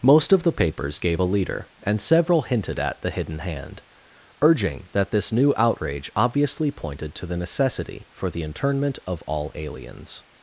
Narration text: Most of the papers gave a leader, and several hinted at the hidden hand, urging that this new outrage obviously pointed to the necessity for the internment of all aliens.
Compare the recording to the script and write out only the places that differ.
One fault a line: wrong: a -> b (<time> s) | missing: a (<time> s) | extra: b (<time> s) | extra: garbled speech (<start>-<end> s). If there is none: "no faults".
no faults